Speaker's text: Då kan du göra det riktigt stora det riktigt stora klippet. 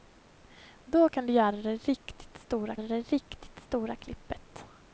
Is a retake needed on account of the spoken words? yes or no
no